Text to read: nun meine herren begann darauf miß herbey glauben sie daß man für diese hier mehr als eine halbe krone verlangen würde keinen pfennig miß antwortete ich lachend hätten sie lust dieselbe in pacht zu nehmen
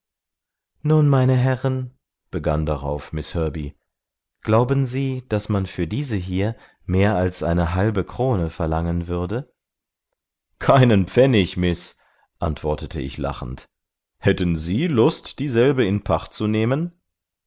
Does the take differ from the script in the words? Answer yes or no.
no